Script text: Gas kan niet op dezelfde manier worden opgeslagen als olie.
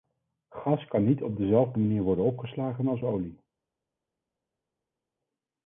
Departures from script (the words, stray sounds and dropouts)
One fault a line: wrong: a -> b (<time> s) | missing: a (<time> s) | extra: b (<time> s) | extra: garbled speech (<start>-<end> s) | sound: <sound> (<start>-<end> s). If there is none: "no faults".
no faults